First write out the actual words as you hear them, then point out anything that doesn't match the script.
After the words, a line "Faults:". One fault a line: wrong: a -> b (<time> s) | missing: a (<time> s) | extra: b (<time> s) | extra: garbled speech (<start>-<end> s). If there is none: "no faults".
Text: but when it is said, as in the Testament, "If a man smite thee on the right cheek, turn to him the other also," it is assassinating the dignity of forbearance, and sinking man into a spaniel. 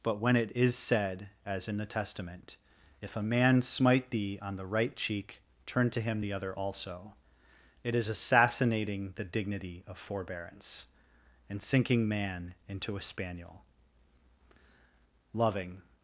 but when it is said, as in the Testament, "If a man smite thee on the right cheek, turn to him the other also," it is assassinating the dignity of forbearance, and sinking man into a spaniel. Loving
Faults:
extra: Loving (15.3 s)